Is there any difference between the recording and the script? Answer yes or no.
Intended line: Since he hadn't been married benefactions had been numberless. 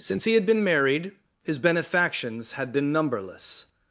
yes